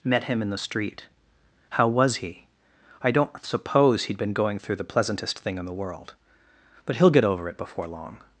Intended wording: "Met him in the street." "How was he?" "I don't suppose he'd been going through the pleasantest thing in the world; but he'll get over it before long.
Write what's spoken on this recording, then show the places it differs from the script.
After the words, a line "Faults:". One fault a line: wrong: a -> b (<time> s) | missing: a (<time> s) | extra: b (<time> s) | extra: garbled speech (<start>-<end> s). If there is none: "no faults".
"Met him in the street." "How was he?" "I don't suppose he'd been going through the pleasantest thing in the world; but he'll get over it before long.
Faults:
no faults